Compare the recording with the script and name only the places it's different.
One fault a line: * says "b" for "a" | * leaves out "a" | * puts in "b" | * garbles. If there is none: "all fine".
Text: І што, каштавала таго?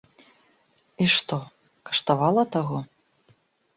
all fine